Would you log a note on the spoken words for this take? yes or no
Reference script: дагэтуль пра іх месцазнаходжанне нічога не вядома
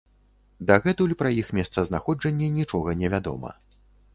no